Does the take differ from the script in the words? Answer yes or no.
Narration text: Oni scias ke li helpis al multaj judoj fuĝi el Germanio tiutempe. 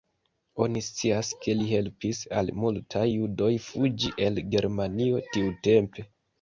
no